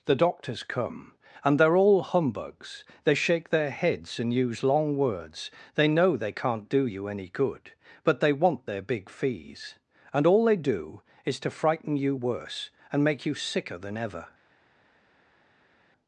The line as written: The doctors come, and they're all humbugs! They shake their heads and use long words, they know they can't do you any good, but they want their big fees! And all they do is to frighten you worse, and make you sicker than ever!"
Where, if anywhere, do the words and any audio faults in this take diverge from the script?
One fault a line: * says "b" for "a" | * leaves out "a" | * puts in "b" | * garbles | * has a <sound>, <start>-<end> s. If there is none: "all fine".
all fine